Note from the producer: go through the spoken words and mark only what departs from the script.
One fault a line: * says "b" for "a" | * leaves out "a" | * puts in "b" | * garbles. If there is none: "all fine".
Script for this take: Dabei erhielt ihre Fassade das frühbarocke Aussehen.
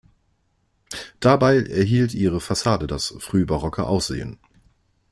all fine